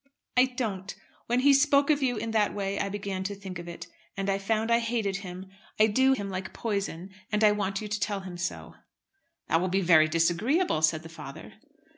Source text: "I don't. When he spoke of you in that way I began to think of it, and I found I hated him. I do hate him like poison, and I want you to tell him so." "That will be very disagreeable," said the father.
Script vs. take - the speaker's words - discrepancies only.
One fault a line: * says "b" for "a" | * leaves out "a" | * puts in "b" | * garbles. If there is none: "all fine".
* leaves out "hate"